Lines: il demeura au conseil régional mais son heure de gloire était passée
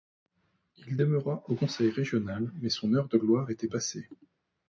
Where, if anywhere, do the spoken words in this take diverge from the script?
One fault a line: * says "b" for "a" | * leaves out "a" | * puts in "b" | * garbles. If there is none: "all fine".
all fine